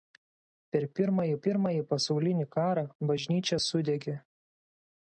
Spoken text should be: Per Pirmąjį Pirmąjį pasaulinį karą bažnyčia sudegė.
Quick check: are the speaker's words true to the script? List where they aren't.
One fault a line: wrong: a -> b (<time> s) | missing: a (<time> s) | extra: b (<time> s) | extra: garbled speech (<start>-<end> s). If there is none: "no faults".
no faults